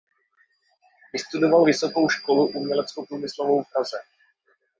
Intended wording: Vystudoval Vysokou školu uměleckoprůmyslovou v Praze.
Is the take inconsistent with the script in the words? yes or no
no